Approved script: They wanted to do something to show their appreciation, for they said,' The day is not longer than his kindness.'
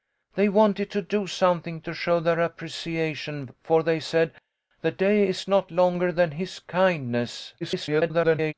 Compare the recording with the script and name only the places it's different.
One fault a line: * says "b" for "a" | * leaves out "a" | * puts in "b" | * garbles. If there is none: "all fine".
* garbles